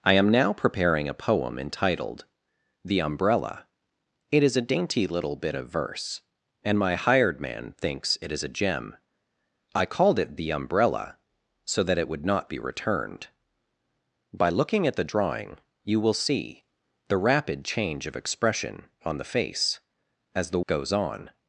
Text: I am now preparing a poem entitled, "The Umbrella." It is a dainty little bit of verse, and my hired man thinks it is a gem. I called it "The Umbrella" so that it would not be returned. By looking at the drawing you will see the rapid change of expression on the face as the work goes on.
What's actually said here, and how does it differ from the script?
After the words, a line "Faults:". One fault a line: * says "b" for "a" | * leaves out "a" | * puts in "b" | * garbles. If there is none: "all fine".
I am now preparing a poem entitled, "The Umbrella." It is a dainty little bit of verse, and my hired man thinks it is a gem. I called it "The Umbrella" so that it would not be returned. By looking at the drawing you will see the rapid change of expression on the face as the goes on.
Faults:
* leaves out "work"